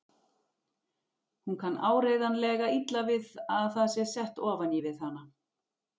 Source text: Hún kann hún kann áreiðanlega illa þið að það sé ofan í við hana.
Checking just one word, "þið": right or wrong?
wrong